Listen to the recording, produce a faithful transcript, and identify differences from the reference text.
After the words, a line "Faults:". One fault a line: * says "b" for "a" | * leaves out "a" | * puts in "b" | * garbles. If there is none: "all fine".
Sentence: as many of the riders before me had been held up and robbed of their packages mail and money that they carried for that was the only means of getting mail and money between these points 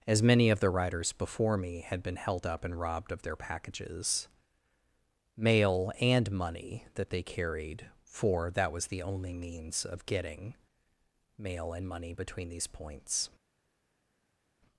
as many of the riders before me had been held up and robbed of their packages mail and money that they carried for that was the only means of getting mail and money between these points
Faults:
all fine